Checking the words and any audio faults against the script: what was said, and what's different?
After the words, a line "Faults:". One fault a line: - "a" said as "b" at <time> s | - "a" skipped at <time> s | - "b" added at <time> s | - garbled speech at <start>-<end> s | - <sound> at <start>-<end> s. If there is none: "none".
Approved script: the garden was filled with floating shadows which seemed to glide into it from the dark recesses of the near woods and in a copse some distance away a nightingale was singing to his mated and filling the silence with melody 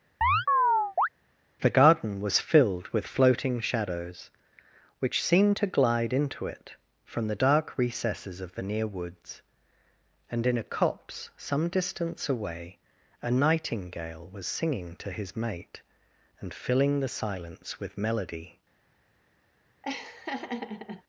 the garden was filled with floating shadows which seemed to glide into it from the dark recesses of the near woods and in a copse some distance away a nightingale was singing to his mate and filling the silence with melody
Faults:
- chirp at 0.2-1.1 s
- "mated" said as "mate" at 15.4 s
- laugh at 19.8-21.0 s